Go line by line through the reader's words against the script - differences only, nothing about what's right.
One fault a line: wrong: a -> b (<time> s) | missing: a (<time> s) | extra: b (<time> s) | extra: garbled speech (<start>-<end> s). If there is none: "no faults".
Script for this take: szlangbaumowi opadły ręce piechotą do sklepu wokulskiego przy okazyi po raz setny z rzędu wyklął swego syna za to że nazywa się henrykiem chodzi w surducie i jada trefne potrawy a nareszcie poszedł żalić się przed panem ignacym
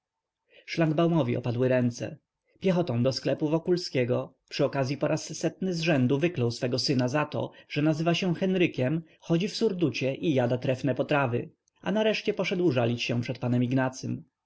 no faults